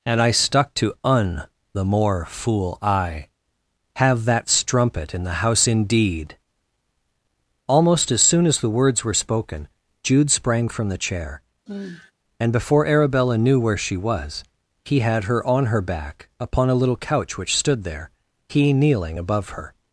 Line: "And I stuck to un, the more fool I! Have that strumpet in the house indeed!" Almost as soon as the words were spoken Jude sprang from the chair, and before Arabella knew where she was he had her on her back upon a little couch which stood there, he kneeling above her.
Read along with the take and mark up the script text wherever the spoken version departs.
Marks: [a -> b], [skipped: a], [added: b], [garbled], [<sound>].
"And I stuck to un, the more fool I! Have that strumpet in the house indeed!" Almost as soon as the words were spoken Jude sprang from the chair, [sigh] and before Arabella knew where she was he had her on her back upon a little couch which stood there, he kneeling above her.